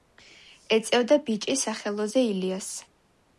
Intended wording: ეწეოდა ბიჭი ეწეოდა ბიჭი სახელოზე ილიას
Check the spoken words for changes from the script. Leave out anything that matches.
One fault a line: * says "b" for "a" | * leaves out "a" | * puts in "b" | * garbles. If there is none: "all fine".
* leaves out "ეწეოდა ბიჭი"